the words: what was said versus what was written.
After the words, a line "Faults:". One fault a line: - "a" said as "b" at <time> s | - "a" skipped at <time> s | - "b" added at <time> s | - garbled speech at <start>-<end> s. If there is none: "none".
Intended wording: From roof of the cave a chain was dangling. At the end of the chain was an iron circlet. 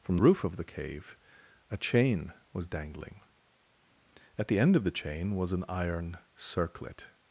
From roof of the cave a chain was dangling. At the end of the chain was an iron circlet.
Faults:
none